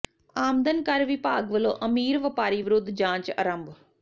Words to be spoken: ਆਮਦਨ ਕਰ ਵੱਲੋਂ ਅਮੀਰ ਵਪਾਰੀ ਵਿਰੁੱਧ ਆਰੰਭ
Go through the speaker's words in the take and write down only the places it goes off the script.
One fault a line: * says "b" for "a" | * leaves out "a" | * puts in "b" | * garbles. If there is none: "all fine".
* puts in "ਵਿਭਾਗ"
* puts in "ਜਾਂਚ"